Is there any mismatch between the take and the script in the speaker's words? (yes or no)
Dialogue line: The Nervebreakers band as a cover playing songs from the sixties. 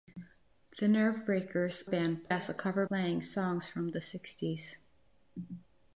no